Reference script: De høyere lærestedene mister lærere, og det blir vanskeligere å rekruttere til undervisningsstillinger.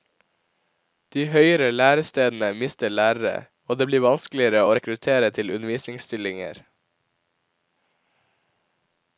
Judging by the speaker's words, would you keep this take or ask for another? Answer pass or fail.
pass